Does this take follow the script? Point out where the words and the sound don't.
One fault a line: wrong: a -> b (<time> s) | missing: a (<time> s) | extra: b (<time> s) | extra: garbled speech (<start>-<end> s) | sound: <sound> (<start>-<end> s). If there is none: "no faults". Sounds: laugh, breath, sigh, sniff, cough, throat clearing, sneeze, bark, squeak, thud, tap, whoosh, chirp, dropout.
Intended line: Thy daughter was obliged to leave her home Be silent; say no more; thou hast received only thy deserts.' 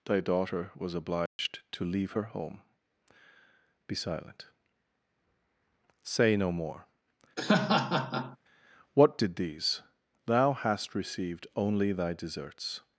sound: dropout (1.3-1.4 s)
sound: laugh (7.4-8.4 s)
extra: what did these (8.9 s)